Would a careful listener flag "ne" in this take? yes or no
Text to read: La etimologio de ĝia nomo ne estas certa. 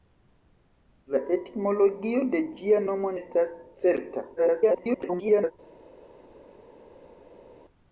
yes